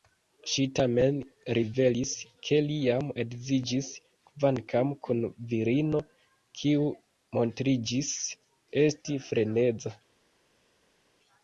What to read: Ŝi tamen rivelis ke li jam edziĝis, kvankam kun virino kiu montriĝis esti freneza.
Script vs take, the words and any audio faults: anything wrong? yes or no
no